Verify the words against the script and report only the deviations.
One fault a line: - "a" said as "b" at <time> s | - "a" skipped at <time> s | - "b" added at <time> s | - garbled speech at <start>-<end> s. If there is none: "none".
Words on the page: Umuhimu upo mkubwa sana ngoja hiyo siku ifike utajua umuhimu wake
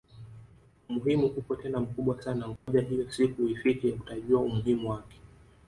- "tena" added at 1.6 s